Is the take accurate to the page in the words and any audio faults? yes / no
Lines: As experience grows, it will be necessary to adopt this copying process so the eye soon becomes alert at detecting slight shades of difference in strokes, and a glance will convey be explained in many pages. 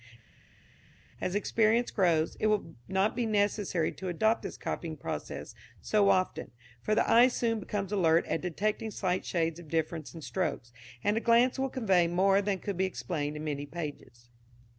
no